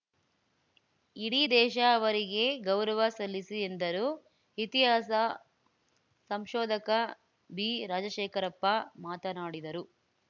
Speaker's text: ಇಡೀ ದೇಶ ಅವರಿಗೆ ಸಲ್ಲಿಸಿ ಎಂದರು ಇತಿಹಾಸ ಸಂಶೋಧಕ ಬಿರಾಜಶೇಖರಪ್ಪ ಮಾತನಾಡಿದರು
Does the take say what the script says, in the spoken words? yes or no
no